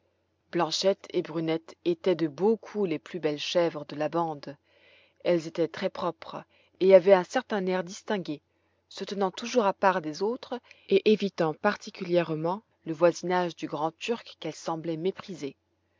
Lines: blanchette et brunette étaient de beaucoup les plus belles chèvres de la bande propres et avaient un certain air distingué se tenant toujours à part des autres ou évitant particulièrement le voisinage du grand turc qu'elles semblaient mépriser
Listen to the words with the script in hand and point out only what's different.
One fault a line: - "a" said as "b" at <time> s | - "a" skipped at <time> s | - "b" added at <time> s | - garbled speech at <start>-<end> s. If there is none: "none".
- "elles étaient très" added at 5.2 s
- "ou" said as "et" at 10.9 s